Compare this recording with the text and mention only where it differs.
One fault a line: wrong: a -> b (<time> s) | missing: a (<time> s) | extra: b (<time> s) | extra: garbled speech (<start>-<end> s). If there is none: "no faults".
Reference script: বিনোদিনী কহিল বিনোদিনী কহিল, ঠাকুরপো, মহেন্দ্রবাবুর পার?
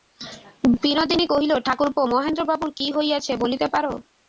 wrong: বিনোদিনী কহিল ঠাকুরপো মহেন্দ্রবাবুর -> ঠাকুরপো মহেন্দ্রবাবুর কী হইয়াছে বলিতে (1.7 s)